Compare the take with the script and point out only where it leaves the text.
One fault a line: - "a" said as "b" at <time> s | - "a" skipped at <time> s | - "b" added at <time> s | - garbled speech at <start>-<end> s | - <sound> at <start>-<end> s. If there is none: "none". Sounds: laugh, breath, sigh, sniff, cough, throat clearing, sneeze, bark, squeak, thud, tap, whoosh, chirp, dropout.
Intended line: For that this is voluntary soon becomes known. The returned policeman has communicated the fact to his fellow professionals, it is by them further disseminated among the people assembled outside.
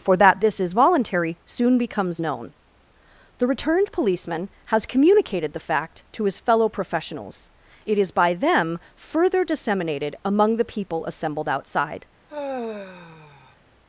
- sigh at 12.3-13.6 s